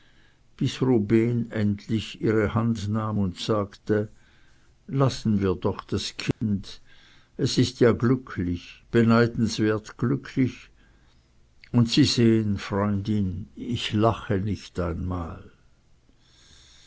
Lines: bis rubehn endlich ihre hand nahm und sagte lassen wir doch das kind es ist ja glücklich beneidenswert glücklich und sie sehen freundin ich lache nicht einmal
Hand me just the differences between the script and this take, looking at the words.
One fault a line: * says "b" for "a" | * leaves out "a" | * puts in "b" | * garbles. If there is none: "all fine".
all fine